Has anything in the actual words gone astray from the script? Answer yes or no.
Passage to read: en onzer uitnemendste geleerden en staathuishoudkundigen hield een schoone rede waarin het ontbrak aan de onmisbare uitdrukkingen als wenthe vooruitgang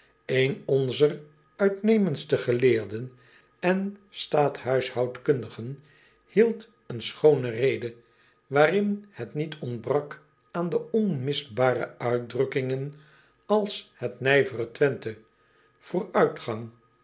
yes